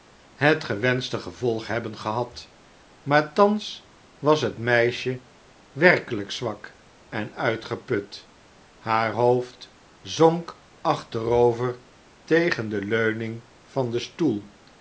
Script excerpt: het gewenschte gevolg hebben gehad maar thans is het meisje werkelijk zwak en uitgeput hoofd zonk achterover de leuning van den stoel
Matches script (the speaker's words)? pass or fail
fail